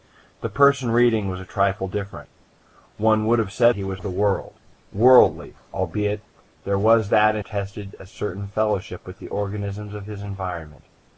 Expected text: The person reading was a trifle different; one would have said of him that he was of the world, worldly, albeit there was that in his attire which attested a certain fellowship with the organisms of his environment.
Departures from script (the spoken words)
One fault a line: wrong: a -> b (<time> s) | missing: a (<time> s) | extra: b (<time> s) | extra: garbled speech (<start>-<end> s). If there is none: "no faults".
missing: of him that (3.8 s)
missing: of (4.0 s)
missing: his attire which (7.4 s)